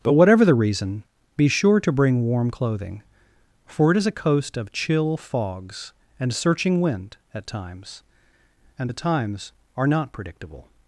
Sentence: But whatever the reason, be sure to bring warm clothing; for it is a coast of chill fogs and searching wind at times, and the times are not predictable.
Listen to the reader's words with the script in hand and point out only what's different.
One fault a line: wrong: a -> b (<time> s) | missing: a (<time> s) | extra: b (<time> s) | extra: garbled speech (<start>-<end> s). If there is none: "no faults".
no faults